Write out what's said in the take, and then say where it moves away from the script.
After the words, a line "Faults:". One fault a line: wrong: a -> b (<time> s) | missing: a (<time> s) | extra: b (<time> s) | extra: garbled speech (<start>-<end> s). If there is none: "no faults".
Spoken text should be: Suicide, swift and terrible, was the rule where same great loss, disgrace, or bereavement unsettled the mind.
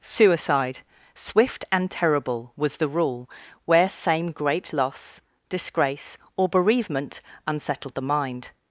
Suicide, swift and terrible, was the rule where same great loss, disgrace, or bereavement unsettled the mind.
Faults:
no faults